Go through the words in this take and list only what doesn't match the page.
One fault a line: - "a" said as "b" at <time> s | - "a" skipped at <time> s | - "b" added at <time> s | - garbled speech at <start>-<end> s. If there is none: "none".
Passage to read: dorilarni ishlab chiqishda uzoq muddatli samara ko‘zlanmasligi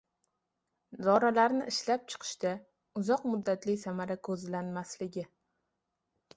none